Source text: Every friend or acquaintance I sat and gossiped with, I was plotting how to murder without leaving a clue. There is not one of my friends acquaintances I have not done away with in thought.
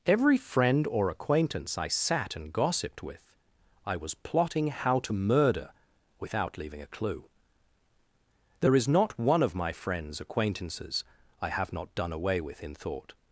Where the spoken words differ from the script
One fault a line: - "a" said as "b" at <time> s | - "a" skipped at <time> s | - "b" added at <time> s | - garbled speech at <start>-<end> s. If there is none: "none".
none